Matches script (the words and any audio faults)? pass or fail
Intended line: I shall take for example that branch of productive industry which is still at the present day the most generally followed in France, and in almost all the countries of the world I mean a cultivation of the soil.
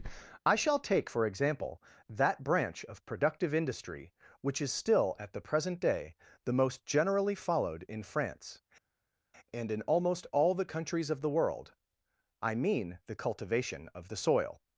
fail